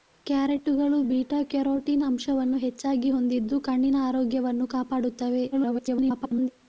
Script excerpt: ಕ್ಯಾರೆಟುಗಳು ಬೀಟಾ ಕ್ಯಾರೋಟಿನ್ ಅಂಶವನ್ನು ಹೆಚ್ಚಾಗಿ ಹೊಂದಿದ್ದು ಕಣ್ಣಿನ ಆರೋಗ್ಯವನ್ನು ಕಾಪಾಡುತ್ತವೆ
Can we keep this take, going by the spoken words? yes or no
no